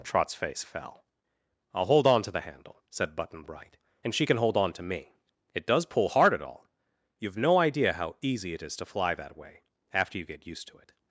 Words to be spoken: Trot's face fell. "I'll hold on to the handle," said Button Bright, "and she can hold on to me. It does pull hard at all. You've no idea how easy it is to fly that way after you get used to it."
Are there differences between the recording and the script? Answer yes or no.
no